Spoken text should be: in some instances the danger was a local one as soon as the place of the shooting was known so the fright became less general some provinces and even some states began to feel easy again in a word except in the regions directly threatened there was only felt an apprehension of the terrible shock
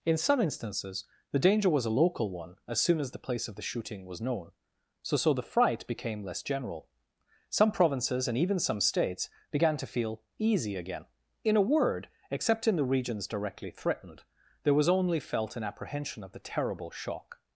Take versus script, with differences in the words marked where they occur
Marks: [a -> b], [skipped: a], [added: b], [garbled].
in some instances the danger was a local one as soon as the place of the shooting was known so [added: so] the fright became less general some provinces and even some states began to feel easy again in a word except in the regions directly threatened there was only felt an apprehension of the terrible shock